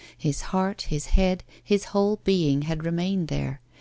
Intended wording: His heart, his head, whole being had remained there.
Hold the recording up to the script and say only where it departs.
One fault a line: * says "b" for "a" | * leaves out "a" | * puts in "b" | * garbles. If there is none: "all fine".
* puts in "his"